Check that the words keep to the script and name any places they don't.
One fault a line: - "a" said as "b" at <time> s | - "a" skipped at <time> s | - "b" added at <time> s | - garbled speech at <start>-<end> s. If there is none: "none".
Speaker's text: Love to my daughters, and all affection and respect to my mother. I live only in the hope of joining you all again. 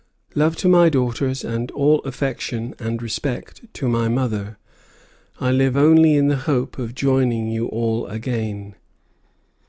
none